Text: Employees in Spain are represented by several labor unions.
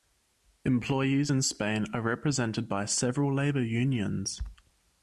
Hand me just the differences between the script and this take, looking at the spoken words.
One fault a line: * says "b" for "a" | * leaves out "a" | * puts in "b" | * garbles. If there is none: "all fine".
all fine